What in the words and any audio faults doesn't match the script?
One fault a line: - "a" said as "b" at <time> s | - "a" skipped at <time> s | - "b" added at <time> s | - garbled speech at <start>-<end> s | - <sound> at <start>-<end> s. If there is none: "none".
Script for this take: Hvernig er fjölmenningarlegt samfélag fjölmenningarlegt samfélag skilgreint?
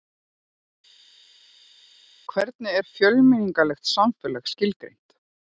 - "fjölmenningarlegt samfélag" skipped at 4.5 s